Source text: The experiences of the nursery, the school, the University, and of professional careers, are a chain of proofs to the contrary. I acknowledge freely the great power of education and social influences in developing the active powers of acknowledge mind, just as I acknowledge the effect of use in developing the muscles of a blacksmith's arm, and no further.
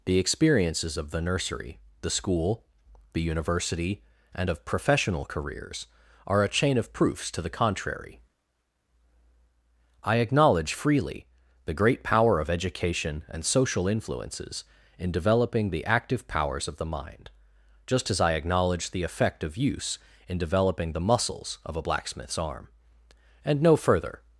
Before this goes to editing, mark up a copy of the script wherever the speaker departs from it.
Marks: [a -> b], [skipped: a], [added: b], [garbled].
The experiences of the nursery, the school, the University, and of professional careers, are a chain of proofs to the contrary. I acknowledge freely the great power of education and social influences in developing the active powers of [acknowledge -> the] mind, just as I acknowledge the effect of use in developing the muscles of a blacksmith's arm, and no further.